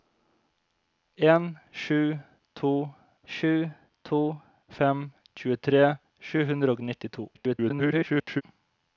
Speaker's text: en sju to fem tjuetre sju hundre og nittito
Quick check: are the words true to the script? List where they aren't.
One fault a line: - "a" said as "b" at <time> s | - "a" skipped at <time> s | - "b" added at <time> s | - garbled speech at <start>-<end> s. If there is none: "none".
- "sju to" added at 3.3 s
- garbled speech at 7.3-8.4 s